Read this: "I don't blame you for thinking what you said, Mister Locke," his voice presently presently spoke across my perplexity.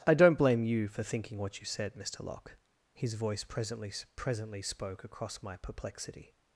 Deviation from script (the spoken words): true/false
false